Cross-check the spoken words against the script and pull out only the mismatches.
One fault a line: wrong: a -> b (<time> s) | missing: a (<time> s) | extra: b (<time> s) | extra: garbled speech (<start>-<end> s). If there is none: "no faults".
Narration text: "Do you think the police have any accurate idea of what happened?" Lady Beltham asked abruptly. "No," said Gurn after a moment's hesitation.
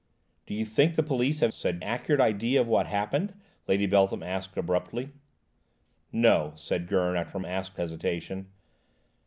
wrong: any -> said (1.5 s)
wrong: moment's -> asked (7.4 s)